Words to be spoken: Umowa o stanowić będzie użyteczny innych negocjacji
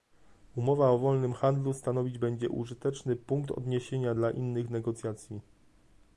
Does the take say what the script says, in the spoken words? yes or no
no